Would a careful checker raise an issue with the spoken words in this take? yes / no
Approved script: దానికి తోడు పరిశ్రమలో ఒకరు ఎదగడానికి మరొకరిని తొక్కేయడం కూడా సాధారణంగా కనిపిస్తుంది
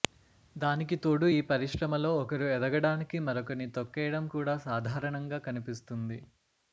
yes